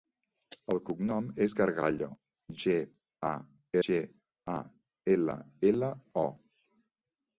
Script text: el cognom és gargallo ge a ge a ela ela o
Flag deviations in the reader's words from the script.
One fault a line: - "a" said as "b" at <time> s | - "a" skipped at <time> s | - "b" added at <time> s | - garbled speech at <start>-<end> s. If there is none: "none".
none